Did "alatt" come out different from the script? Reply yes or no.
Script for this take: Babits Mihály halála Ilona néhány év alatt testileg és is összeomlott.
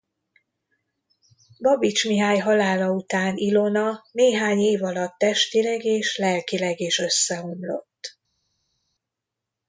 no